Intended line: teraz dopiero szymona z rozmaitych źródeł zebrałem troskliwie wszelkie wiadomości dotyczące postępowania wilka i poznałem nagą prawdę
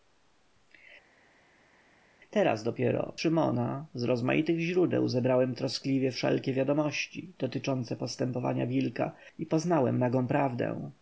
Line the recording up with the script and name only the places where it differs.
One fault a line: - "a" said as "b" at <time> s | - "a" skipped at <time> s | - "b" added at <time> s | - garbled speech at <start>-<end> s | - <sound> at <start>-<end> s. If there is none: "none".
none